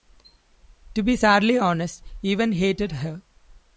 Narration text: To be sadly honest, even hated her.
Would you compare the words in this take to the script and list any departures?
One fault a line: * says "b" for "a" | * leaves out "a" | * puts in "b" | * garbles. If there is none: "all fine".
all fine